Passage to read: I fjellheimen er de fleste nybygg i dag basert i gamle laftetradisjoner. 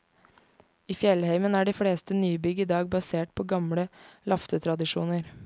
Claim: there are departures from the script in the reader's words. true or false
true